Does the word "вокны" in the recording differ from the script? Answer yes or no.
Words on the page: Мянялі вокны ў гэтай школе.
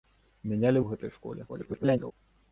yes